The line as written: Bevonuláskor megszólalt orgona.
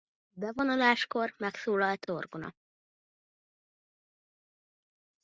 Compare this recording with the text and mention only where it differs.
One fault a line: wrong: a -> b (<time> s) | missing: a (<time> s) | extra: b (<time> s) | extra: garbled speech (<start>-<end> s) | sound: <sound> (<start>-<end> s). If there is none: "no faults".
no faults